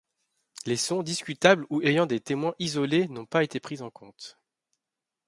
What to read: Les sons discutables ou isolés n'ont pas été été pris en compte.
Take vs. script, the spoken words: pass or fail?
fail